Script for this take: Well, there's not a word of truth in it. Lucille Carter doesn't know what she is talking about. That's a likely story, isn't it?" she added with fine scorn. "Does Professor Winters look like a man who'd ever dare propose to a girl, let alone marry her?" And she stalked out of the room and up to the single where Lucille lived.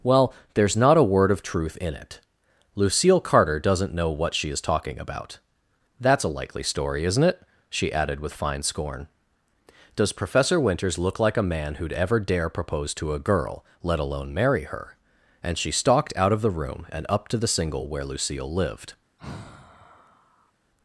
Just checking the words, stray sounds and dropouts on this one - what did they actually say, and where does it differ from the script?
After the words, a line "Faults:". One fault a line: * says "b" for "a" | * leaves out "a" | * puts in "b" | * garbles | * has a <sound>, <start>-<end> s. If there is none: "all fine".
Well, there's not a word of truth in it. Lucille Carter doesn't know what she is talking about. That's a likely story, isn't it?" she added with fine scorn. "Does Professor Winters look like a man who'd ever dare propose to a girl, let alone marry her?" And she stalked out of the room and up to the single where Lucille lived.
Faults:
* has a sigh, 19.2-20.5 s